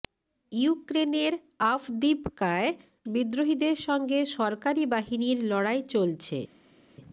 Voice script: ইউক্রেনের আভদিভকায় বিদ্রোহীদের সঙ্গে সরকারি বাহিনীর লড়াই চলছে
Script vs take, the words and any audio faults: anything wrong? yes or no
no